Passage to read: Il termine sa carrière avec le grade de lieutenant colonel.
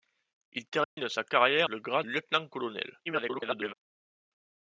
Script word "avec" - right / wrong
wrong